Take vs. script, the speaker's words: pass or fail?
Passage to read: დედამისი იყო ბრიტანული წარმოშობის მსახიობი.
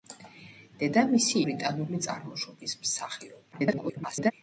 fail